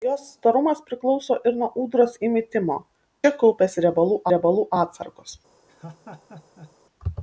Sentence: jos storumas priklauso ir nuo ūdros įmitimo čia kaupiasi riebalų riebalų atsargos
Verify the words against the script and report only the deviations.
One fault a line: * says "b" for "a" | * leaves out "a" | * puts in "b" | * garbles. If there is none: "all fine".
all fine